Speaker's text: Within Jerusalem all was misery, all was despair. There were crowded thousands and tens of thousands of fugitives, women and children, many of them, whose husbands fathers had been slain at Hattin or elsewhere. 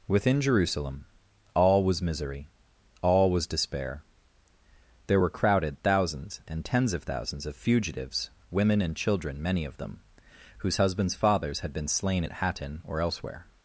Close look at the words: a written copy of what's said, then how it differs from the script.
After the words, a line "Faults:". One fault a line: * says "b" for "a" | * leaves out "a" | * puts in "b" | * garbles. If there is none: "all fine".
Within Jerusalem all was misery, all was despair. There were crowded thousands and tens of thousands of fugitives, women and children, many of them, whose husbands fathers had been slain at Hattin or elsewhere.
Faults:
all fine